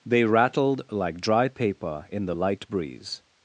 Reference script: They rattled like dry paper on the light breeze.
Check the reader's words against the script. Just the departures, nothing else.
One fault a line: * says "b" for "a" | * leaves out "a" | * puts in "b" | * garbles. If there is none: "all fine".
* says "in" for "on"